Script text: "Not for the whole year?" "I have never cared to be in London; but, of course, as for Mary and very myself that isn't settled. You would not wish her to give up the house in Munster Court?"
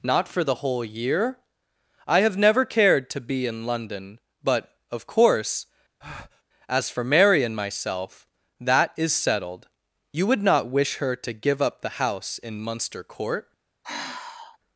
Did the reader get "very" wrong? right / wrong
wrong